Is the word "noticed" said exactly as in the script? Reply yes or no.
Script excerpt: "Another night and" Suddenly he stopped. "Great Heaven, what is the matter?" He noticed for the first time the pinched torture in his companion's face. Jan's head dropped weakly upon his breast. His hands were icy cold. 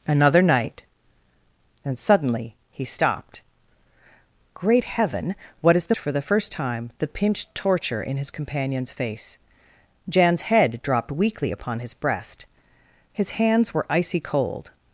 no